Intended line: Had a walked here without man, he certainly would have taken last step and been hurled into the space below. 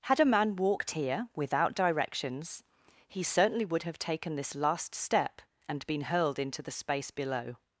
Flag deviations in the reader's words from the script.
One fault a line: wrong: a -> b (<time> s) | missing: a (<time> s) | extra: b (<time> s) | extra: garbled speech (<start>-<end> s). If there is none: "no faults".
extra: man (0.2 s)
wrong: man -> directions (1.8 s)
extra: this (4.3 s)